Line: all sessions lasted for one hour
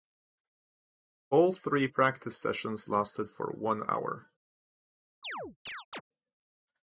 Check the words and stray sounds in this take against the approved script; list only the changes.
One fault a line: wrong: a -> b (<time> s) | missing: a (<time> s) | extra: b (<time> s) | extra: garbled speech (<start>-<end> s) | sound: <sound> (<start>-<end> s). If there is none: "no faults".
extra: three practice (1.5 s)
sound: chirp (5.2-6.0 s)